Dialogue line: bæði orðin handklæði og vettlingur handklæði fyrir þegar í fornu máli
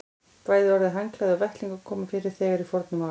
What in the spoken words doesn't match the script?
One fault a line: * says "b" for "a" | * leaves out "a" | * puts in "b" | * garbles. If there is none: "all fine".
* says "koma" for "handklæði"